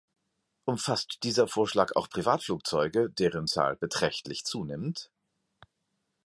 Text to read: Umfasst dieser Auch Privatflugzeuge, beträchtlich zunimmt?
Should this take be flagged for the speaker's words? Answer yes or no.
yes